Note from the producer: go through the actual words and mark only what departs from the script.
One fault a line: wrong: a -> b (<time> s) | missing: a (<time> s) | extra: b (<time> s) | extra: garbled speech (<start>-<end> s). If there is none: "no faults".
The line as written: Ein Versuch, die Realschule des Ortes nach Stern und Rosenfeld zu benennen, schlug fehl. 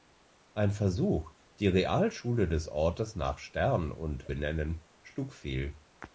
missing: Rosenfeld zu (4.3 s)